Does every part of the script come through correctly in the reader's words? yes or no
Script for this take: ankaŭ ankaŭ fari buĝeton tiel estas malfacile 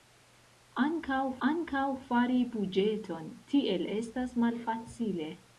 yes